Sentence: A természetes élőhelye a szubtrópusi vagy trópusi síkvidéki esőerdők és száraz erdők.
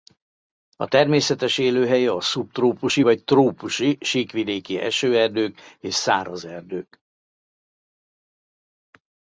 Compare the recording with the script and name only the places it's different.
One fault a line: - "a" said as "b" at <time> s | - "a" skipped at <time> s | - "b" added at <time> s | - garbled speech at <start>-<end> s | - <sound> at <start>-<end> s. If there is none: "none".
none